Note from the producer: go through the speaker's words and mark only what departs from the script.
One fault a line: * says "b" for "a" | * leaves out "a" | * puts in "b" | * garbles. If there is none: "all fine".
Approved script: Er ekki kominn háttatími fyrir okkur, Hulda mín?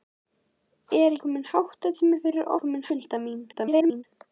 * leaves out "ekki"
* says "kominn" for "okkur"
* garbles